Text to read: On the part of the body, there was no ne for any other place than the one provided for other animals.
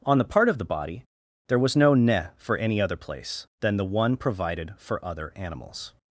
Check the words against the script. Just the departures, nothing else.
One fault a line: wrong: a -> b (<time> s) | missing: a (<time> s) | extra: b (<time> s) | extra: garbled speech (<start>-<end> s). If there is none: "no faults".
no faults